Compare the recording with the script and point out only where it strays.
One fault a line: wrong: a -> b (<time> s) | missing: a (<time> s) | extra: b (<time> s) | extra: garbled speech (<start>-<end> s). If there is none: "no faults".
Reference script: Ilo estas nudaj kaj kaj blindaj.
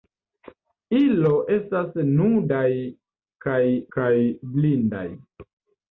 no faults